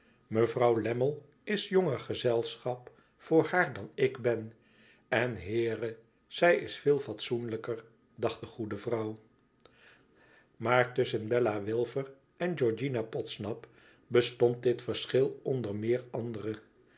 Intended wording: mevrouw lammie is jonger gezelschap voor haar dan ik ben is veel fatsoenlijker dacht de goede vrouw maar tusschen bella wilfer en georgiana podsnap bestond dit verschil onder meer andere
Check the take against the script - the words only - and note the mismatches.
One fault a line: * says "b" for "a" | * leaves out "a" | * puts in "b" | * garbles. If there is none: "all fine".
* puts in "en heere zij"